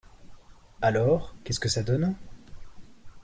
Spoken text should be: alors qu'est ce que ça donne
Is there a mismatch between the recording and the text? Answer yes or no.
no